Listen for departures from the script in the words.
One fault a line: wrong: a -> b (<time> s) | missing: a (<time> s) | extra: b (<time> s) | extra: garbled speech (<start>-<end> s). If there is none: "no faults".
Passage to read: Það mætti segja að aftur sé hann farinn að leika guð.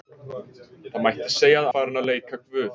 missing: aftur sé hann (1.7 s)